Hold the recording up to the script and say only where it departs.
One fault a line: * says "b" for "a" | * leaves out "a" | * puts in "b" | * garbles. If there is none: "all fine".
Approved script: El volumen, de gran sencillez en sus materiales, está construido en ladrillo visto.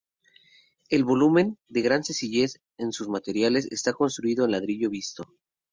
all fine